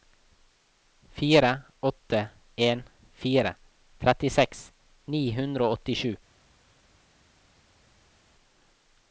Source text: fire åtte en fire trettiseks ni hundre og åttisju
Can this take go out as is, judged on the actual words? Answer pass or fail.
pass